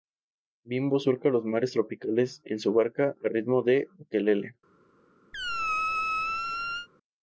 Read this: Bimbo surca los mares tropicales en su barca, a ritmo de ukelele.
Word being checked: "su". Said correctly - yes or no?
yes